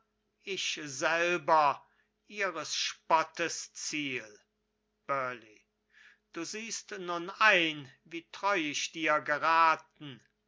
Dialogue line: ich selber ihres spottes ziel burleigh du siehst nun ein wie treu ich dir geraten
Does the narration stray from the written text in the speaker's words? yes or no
no